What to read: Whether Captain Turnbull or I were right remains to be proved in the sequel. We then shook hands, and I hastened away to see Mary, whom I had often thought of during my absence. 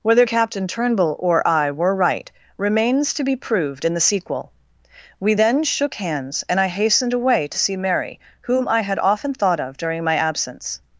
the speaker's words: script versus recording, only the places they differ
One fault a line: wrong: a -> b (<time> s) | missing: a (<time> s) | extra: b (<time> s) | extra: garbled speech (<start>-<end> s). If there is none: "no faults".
no faults